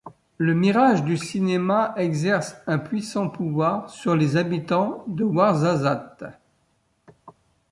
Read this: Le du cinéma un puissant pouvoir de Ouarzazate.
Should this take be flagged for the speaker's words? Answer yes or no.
yes